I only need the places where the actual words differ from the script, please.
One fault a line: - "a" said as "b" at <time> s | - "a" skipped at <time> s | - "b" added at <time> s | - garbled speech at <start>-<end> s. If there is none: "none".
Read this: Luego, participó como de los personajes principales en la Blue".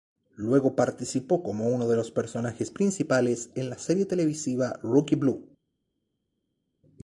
- "uno" added at 1.7 s
- "serie televisiva Rookie" added at 3.8 s